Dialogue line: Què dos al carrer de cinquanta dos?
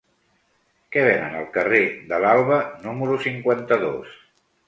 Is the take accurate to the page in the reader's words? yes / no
no